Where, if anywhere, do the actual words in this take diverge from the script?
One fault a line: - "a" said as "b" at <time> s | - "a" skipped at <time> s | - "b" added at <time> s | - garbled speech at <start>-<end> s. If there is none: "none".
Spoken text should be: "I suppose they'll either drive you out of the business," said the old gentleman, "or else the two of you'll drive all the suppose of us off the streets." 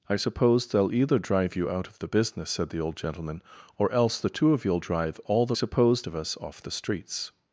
none